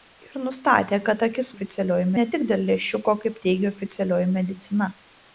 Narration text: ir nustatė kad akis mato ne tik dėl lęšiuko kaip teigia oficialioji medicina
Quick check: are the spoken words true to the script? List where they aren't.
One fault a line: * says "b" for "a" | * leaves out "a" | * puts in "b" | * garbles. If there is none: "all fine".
* says "oficialioji" for "mato"